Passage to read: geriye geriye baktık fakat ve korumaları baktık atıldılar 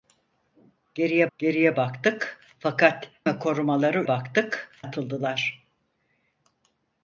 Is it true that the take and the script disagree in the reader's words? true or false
false